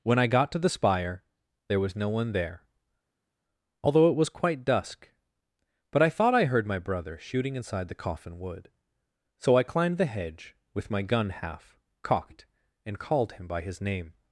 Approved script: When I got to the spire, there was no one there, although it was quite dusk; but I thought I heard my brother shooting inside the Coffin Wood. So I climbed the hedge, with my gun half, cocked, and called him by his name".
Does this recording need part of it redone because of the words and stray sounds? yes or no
no